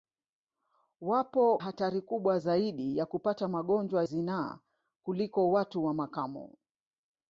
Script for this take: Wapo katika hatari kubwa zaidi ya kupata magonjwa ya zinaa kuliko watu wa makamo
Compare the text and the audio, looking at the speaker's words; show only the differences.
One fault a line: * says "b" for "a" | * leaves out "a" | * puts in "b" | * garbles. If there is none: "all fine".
* leaves out "katika"
* leaves out "ya"